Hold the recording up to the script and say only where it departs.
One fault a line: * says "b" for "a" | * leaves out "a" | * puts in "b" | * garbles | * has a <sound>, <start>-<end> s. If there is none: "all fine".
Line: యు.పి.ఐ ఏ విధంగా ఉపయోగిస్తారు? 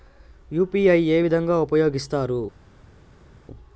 all fine